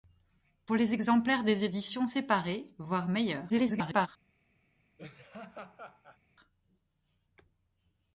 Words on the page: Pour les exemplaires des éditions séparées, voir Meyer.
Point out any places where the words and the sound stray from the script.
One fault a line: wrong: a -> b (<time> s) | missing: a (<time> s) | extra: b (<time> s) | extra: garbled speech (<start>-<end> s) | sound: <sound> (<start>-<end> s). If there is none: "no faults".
extra: garbled speech (3.5-4.1 s)
sound: laugh (5.0-6.2 s)